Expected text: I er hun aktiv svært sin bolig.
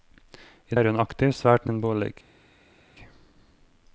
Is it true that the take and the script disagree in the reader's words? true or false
false